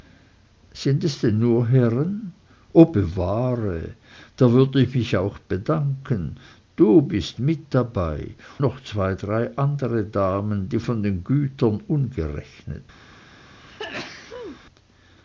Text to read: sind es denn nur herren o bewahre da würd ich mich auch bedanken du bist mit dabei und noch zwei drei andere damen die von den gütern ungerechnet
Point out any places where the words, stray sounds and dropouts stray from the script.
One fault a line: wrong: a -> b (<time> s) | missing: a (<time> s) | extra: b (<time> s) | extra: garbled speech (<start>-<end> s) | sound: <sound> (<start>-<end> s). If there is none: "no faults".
missing: und (8.3 s)
sound: sneeze (13.6-14.6 s)